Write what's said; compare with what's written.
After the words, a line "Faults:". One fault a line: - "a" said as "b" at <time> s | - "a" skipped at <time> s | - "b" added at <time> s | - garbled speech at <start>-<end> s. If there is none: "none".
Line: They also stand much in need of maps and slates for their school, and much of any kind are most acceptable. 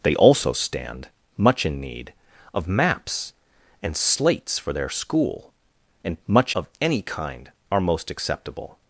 They also stand much in need of maps and slates for their school, and much of any kind are most acceptable.
Faults:
none